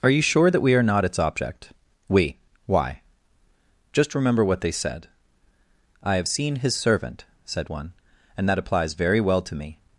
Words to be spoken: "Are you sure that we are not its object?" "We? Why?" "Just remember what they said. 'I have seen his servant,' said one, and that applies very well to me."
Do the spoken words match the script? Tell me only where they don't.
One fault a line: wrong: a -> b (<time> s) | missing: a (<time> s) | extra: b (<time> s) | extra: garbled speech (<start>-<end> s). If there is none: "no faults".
no faults